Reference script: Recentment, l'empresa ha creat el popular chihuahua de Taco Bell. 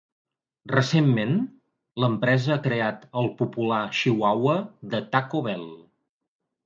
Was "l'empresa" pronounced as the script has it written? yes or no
yes